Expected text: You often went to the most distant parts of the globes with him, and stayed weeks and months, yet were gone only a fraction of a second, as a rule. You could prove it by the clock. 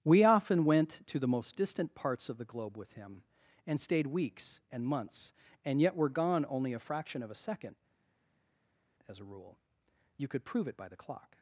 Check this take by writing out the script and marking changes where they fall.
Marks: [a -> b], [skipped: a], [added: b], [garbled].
[You -> We] often went to the most distant parts of the [globes -> globe] with him, and stayed weeks and months, [added: and] yet were gone only a fraction of a second, as a rule. You could prove it by the clock.